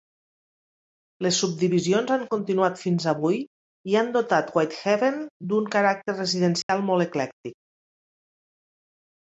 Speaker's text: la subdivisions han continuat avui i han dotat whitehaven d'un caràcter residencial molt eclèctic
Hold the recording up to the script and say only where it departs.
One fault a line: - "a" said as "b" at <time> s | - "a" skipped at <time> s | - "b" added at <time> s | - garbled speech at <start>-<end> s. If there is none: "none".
- "la" said as "les" at 1.2 s
- "fins" added at 2.9 s